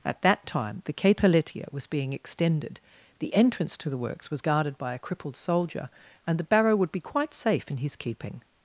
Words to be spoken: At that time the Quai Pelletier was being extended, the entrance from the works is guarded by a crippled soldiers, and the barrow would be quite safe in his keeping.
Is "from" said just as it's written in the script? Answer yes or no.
no